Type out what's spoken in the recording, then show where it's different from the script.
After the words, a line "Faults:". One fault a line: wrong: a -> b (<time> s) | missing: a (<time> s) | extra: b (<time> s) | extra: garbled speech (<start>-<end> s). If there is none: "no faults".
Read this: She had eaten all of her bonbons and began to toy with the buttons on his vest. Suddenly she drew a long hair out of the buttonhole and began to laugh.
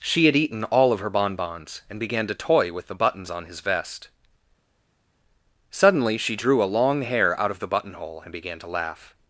She had eaten all of her bonbons and began to toy with the buttons on his vest. Suddenly she drew a long hair out of the buttonhole and began to laugh.
Faults:
no faults